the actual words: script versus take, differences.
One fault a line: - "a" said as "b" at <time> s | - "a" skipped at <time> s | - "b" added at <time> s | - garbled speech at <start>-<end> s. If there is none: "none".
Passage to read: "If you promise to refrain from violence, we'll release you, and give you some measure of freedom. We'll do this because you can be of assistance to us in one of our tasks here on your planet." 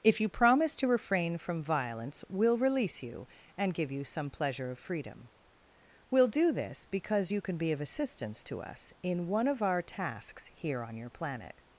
- "measure" said as "pleasure" at 4.3 s